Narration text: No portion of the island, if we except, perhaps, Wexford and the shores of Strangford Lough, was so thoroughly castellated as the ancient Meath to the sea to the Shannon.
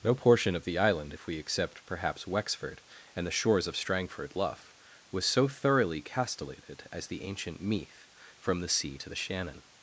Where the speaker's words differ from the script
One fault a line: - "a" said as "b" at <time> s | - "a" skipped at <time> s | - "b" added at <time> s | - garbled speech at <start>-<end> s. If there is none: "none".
- "to" said as "from" at 8.4 s